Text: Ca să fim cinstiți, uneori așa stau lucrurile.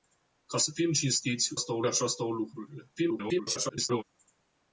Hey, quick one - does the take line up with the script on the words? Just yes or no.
no